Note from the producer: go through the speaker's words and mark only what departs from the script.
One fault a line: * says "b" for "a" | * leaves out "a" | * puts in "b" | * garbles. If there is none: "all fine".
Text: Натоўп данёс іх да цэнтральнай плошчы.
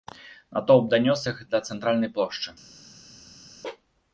all fine